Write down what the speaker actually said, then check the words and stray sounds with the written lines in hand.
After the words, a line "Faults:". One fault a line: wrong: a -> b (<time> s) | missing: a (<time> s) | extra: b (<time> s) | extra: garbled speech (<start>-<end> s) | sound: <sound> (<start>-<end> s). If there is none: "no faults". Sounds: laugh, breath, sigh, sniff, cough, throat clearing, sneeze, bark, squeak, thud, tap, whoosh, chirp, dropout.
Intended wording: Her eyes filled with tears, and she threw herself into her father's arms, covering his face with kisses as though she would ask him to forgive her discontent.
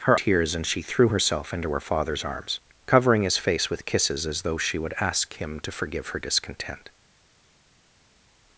Her tears, and she threw herself into her father's arms, covering his face with kisses as though she would ask him to forgive her discontent.
Faults:
missing: eyes filled with (0.2 s)